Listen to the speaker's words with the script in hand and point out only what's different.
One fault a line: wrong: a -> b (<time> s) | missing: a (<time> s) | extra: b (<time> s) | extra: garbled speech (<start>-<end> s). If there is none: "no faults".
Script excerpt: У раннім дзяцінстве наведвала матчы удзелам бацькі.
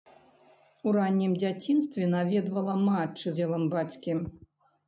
no faults